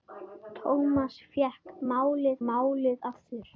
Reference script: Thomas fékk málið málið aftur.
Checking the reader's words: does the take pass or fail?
pass